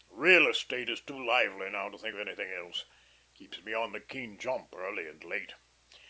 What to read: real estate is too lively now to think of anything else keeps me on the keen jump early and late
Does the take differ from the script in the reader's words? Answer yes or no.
no